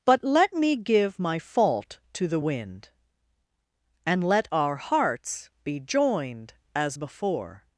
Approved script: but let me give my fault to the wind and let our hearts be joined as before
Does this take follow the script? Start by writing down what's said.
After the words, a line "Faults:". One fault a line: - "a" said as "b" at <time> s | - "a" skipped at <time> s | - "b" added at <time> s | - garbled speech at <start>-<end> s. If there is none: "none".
but let me give my fault to the wind and let our hearts be joined as before
Faults:
none